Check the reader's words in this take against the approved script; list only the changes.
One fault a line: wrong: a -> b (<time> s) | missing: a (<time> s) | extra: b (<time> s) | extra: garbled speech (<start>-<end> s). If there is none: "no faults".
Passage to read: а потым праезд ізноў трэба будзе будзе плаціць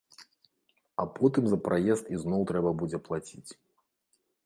extra: за (1.5 s)
missing: будзе (3.0 s)